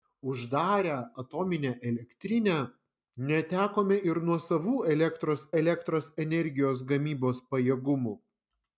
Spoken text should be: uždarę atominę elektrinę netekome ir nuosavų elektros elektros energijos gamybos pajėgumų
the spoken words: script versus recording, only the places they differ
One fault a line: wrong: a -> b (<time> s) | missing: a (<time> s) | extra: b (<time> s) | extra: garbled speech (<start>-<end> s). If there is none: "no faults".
no faults